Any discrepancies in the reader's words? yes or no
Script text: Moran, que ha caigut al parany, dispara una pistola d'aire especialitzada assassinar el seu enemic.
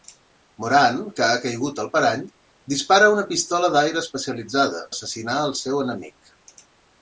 no